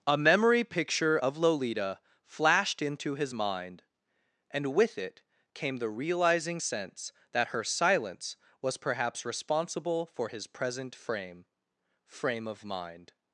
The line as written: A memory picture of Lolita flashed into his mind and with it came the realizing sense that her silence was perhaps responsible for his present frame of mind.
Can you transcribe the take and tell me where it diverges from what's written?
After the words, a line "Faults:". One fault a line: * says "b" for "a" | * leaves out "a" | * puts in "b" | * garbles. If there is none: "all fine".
A memory picture of Lolita flashed into his mind and with it came the realizing sense that her silence was perhaps responsible for his present frame frame of mind.
Faults:
* puts in "frame"